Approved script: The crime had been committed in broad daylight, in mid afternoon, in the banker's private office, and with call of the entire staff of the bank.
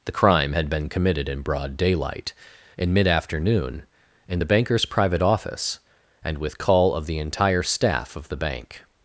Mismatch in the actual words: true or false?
false